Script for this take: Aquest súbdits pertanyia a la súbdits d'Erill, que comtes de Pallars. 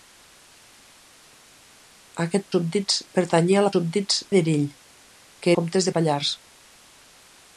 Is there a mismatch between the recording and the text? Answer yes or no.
no